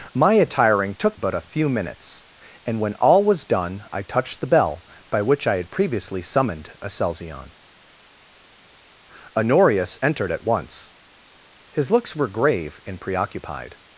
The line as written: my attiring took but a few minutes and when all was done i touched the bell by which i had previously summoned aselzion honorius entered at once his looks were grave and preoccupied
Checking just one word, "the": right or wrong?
right